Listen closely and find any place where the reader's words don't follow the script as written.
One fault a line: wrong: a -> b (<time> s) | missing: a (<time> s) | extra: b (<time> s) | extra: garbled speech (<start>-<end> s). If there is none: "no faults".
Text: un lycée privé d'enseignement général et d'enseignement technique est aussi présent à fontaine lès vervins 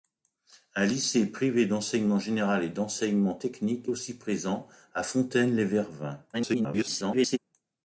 missing: est (3.9 s)
extra: garbled speech (6.3-7.4 s)